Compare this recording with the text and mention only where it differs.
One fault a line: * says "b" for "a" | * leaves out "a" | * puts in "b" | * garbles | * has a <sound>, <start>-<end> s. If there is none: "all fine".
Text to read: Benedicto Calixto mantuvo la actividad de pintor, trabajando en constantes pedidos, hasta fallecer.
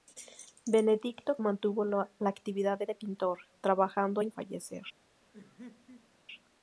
* leaves out "Calixto"
* puts in "de"
* leaves out "constantes pedidos hasta"
* has a laugh, 5.3-6.1 s